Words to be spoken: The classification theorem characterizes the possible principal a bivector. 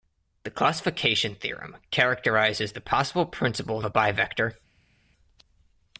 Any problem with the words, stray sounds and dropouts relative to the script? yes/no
no